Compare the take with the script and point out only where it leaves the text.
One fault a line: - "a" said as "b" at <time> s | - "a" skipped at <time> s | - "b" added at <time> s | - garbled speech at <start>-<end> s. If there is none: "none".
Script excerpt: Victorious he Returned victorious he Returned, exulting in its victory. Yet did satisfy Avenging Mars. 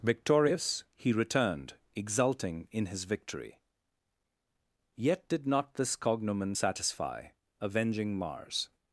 - "victorious he Returned" skipped at 1.8 s
- "its" said as "his" at 2.9 s
- "not this cognomen" added at 5.5 s